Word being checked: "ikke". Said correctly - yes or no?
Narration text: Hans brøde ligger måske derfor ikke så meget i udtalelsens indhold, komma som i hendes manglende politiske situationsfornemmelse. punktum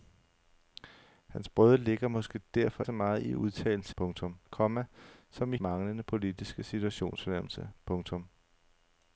no